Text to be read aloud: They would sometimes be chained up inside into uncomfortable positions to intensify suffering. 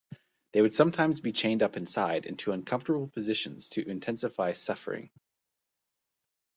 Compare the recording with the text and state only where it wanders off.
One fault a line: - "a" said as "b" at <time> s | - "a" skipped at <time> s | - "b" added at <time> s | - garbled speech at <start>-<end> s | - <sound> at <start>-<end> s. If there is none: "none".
none